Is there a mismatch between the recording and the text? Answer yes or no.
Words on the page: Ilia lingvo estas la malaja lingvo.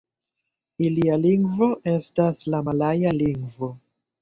no